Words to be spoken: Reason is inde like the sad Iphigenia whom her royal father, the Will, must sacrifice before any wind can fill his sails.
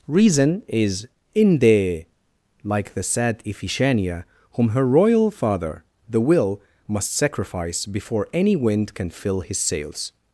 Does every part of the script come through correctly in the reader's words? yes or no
yes